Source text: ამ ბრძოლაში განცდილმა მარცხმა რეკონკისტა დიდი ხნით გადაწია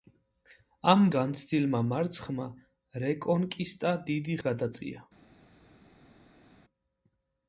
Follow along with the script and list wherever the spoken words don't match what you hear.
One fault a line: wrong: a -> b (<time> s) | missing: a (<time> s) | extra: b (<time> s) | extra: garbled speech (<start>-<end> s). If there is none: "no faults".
missing: ბრძოლაში (1.0 s)
missing: ხნით (4.4 s)